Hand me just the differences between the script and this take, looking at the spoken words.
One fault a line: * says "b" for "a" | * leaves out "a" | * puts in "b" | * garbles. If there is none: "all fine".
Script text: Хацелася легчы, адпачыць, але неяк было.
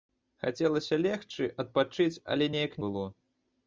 all fine